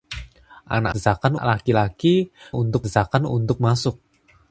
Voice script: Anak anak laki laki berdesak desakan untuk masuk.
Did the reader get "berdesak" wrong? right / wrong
wrong